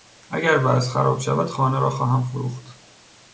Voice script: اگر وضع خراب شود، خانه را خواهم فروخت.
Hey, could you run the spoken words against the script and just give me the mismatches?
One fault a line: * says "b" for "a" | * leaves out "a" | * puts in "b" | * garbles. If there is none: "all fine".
all fine